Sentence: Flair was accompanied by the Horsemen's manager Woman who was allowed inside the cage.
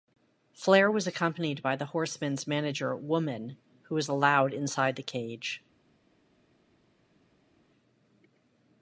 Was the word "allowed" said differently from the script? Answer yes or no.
no